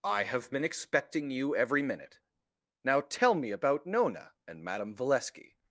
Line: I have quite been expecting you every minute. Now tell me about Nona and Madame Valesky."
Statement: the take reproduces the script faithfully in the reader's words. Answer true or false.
false